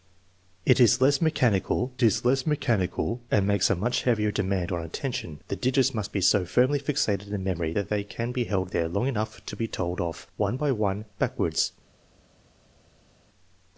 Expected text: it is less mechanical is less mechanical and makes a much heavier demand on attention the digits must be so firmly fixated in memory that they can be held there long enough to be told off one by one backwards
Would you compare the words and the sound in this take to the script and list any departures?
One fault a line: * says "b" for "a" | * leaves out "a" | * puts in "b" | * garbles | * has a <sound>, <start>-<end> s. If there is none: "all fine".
all fine